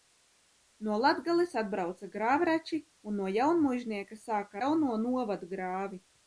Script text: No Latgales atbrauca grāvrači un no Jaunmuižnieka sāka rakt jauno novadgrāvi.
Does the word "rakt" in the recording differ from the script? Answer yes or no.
yes